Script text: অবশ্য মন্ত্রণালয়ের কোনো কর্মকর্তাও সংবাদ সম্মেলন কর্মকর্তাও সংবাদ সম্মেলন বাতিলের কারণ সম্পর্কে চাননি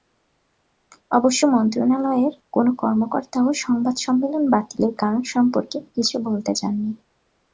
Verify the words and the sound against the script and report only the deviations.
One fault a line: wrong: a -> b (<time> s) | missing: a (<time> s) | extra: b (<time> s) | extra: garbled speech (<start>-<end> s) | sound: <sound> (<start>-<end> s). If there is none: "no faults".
missing: কর্মকর্তাও সংবাদ সম্মেলন (4.4 s)
extra: কিছু বলতে (6.0 s)